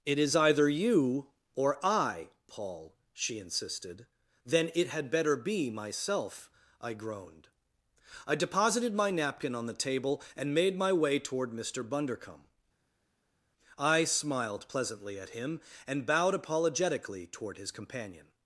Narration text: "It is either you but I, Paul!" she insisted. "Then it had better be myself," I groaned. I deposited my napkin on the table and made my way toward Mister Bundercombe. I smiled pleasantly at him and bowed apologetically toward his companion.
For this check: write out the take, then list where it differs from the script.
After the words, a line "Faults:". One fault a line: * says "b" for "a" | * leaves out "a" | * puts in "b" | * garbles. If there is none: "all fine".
"It is either you or I, Paul!" she insisted. "Then it had better be myself," I groaned. I deposited my napkin on the table and made my way toward Mister Bundercombe. I smiled pleasantly at him and bowed apologetically toward his companion.
Faults:
* says "or" for "but"